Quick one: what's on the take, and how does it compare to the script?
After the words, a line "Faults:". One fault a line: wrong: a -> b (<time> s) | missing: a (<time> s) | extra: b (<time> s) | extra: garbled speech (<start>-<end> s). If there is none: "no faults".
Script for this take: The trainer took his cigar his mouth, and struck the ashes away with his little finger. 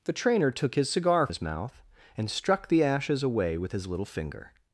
The trainer took his cigar his mouth, and struck the ashes away with his little finger.
Faults:
no faults